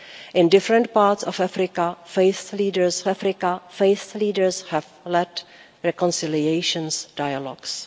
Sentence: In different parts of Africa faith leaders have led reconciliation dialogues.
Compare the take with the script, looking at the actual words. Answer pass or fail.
fail